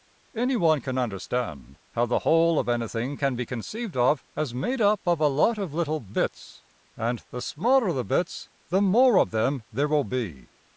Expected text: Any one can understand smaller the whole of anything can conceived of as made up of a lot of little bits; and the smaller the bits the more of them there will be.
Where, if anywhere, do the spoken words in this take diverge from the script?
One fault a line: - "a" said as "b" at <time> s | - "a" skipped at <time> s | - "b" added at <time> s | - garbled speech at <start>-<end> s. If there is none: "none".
- "smaller" said as "how" at 1.9 s
- "be" added at 3.4 s